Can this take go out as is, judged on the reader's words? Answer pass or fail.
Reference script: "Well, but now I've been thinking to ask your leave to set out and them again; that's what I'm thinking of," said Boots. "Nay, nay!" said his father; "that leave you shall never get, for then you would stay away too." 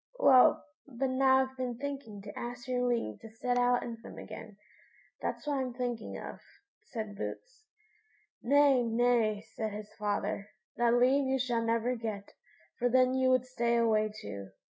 pass